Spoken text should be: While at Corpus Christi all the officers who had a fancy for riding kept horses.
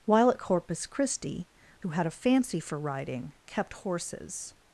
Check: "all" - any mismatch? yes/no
yes